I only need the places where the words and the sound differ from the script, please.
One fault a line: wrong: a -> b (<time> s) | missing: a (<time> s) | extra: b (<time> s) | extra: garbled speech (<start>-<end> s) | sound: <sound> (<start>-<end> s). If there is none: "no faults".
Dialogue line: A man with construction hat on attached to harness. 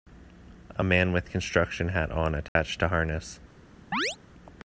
sound: dropout (2.5-2.6 s)
sound: chirp (3.9-4.2 s)